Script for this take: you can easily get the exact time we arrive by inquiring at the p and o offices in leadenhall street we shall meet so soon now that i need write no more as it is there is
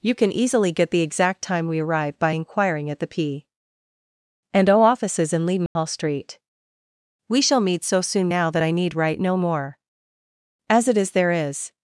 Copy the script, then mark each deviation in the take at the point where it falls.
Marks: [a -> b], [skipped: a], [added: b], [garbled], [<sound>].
you can easily get the exact time we arrive by inquiring at the p and o offices in leadenhall [dropout] street we shall meet so soon now that i need write no more as it is there is